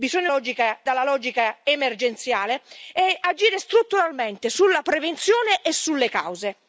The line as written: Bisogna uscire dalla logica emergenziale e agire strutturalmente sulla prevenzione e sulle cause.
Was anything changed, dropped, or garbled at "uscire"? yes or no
yes